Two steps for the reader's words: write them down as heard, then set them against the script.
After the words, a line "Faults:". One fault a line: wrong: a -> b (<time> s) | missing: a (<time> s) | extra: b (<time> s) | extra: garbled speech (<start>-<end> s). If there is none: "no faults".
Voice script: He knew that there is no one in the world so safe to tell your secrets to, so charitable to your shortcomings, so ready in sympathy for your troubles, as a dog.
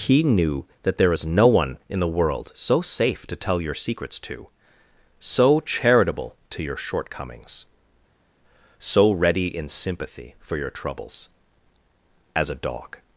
He knew that there is no one in the world so safe to tell your secrets to, so charitable to your shortcomings, so ready in sympathy for your troubles, as a dog.
Faults:
no faults